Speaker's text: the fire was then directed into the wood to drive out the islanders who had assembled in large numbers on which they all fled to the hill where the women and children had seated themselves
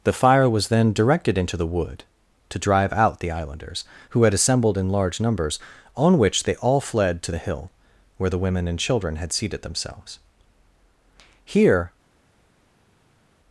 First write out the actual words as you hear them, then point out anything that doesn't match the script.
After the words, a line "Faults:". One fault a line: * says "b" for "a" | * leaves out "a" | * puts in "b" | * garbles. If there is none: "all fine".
the fire was then directed into the wood to drive out the islanders who had assembled in large numbers on which they all fled to the hill where the women and children had seated themselves here
Faults:
* puts in "here"